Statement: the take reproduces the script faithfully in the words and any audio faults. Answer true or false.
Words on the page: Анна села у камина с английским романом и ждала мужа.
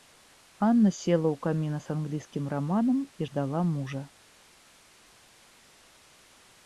true